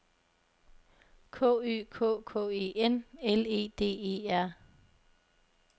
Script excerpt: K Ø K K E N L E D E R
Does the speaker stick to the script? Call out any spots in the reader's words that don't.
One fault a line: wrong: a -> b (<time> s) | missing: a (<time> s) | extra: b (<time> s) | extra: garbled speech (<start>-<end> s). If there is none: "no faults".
no faults